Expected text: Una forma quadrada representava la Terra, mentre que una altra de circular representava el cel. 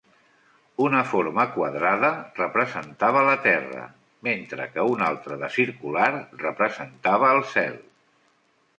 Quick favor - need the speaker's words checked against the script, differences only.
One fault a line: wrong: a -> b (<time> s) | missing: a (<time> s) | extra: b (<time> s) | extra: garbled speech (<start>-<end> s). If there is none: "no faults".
no faults